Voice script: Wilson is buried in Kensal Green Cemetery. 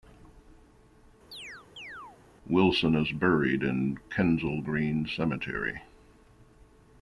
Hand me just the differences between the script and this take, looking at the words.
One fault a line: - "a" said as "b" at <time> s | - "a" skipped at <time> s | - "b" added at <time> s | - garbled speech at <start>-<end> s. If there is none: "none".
none